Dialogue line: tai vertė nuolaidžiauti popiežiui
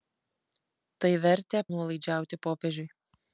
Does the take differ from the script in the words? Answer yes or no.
no